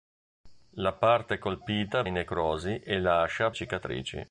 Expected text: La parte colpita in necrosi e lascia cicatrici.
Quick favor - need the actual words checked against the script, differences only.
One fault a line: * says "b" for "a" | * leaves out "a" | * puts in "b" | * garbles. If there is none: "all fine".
all fine